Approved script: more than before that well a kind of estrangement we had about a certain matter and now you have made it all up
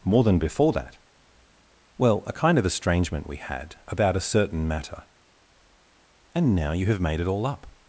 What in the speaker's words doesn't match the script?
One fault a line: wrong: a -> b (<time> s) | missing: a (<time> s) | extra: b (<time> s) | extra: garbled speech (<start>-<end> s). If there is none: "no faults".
no faults